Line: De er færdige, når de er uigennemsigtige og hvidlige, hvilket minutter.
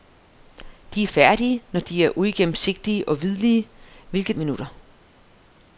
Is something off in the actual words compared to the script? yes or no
no